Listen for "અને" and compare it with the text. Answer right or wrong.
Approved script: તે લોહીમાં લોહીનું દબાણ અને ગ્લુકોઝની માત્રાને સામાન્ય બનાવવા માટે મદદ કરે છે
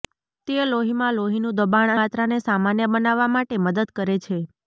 wrong